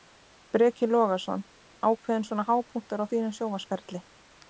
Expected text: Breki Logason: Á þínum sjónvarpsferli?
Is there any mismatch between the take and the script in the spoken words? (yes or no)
yes